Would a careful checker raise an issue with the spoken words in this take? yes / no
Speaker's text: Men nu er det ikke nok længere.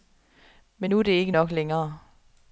no